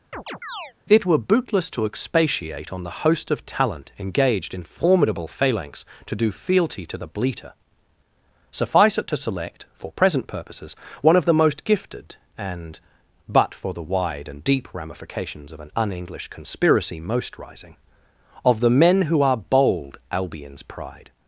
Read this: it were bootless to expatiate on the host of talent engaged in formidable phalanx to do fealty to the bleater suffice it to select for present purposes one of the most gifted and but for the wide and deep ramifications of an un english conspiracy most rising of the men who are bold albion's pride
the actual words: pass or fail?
pass